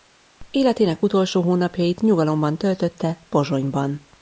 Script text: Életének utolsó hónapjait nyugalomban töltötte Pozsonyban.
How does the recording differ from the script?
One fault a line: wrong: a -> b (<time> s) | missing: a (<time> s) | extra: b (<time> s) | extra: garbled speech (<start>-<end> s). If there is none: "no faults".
no faults